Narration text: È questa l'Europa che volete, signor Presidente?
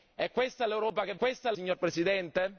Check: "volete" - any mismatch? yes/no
yes